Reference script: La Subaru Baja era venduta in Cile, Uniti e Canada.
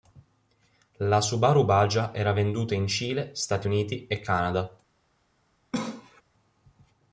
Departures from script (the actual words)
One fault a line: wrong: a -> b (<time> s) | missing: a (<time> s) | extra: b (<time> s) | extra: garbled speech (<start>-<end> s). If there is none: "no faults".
extra: Stati (3.4 s)